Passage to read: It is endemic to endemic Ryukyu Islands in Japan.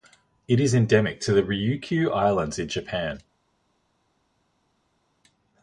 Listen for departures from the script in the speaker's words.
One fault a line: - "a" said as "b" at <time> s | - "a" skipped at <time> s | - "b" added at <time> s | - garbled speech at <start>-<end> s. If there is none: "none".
- "endemic" said as "the" at 1.3 s